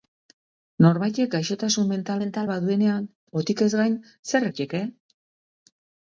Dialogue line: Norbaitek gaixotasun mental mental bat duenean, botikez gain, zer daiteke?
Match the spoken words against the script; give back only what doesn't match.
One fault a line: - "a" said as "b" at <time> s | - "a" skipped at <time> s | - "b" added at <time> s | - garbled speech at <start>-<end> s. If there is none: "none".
none